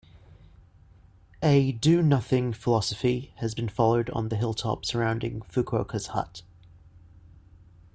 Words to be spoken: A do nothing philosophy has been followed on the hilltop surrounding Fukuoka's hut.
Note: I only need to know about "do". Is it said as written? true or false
true